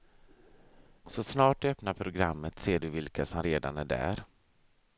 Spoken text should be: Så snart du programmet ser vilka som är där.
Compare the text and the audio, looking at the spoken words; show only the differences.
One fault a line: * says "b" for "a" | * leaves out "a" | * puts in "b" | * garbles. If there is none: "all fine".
* puts in "öppnar"
* puts in "du"
* puts in "redan"